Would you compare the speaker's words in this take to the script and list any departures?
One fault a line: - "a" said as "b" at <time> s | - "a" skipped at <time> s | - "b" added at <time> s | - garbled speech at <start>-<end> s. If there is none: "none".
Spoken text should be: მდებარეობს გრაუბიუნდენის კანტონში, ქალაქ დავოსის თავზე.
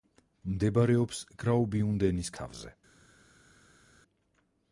- "კანტონში ქალაქ დავოსის" skipped at 2.3 s